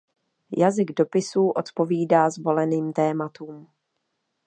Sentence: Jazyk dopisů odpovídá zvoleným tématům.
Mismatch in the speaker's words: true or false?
false